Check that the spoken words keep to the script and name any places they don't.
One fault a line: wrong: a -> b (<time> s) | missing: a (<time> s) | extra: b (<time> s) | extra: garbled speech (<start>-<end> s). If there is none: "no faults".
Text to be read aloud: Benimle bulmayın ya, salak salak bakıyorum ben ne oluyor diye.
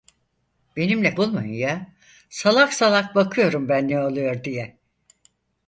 no faults